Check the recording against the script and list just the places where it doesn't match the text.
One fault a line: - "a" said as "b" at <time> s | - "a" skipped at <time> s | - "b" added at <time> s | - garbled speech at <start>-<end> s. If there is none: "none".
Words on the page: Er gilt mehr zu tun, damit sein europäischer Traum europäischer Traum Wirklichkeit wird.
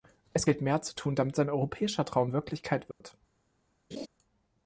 - "Er" said as "Es" at 0.3 s
- "europäischer Traum" skipped at 2.3 s